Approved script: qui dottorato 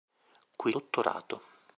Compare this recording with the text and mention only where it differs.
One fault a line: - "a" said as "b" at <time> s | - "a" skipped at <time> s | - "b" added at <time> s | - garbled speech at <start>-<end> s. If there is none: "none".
none